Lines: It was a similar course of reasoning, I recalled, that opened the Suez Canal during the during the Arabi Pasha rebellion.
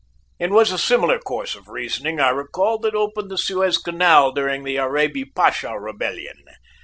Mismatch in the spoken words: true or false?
true